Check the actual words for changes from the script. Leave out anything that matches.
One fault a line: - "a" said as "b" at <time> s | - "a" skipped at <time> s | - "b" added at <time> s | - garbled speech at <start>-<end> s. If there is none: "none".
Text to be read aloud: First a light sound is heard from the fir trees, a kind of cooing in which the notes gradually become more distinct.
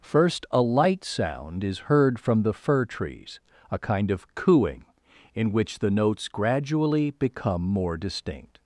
none